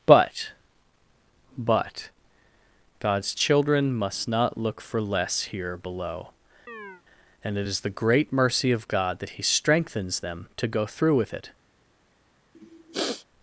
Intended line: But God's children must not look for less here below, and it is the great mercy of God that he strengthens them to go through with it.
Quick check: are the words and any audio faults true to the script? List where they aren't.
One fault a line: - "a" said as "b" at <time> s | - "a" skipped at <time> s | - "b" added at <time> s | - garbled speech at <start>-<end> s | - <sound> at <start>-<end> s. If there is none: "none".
- "but" added at 1.6 s
- chirp at 6.7-7.0 s
- sniff at 12.5-13.3 s